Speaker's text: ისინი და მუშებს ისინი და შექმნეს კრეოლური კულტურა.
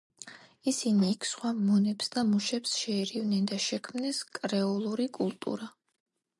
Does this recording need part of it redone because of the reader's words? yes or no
yes